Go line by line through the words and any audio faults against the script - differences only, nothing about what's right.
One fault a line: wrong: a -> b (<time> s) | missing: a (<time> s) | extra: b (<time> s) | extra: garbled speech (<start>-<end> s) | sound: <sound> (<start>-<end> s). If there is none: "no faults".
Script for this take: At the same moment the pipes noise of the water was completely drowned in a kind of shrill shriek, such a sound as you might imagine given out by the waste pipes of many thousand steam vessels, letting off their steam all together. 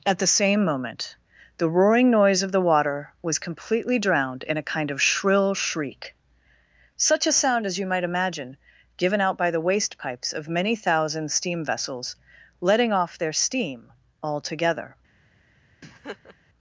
wrong: pipes -> roaring (1.7 s)
sound: laugh (15.8-16.4 s)